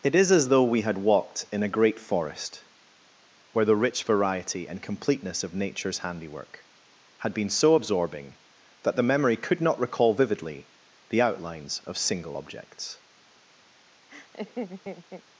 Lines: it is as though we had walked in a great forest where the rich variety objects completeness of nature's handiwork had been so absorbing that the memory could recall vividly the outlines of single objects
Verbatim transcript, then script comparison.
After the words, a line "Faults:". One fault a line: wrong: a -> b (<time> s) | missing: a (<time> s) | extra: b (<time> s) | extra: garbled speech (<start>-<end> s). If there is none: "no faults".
it is as though we had walked in a great forest where the rich variety and completeness of nature's handiwork had been so absorbing that the memory could not recall vividly the outlines of single objects
Faults:
wrong: objects -> and (4.7 s)
extra: not (9.6 s)